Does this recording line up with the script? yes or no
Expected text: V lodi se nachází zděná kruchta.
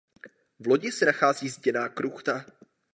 yes